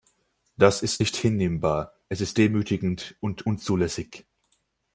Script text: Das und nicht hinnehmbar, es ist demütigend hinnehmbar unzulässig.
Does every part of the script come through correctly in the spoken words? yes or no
no